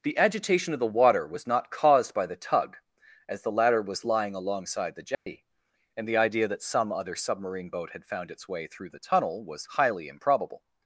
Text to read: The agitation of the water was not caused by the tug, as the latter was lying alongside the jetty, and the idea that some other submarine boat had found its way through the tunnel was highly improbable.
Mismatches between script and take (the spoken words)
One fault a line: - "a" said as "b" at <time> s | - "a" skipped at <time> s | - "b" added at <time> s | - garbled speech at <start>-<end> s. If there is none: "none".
none